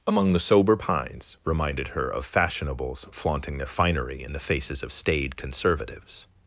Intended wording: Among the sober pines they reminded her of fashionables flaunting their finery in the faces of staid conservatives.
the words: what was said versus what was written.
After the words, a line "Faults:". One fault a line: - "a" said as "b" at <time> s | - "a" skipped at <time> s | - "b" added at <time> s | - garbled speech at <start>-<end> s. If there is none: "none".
Among the sober pines reminded her of fashionables flaunting their finery in the faces of staid conservatives.
Faults:
- "they" skipped at 1.4 s